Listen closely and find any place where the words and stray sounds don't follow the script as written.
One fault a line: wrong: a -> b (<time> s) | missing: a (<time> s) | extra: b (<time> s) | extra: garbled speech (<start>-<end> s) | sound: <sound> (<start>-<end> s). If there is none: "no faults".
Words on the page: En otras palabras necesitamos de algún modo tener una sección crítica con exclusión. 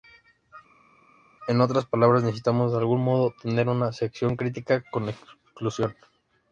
no faults